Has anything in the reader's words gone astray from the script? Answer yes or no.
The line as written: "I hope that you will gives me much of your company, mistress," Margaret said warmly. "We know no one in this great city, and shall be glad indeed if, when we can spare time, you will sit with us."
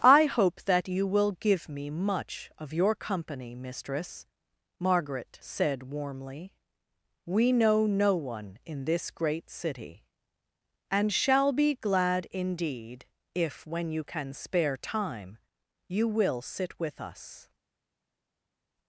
yes